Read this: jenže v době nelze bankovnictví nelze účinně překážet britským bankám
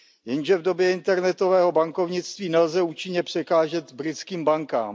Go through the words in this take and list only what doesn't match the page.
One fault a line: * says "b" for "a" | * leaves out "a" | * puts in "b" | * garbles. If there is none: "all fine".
* says "internetového" for "nelze"